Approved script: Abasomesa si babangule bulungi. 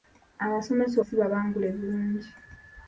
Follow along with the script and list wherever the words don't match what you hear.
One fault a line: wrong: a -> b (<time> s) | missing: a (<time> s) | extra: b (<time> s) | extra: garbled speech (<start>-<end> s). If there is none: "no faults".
no faults